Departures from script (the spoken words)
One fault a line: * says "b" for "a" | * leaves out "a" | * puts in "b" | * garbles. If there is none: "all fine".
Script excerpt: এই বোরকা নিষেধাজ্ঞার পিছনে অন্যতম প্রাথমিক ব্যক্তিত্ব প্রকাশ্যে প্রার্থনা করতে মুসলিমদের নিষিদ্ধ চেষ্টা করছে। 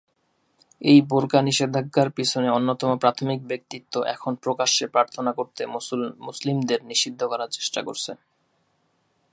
* puts in "এখন"
* puts in "করার"